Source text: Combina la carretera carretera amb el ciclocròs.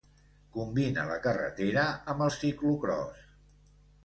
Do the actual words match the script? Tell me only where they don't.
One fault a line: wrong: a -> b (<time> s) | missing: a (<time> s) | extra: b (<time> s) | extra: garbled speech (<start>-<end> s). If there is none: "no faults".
missing: carretera (1.8 s)